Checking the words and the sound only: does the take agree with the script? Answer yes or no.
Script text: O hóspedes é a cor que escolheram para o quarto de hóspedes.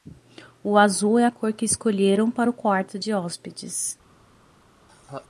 no